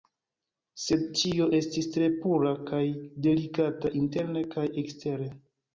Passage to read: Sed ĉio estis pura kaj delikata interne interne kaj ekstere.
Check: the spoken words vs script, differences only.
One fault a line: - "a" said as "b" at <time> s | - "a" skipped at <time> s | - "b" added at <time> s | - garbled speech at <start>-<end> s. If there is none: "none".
- "tre" added at 2.0 s
- "interne" skipped at 4.5 s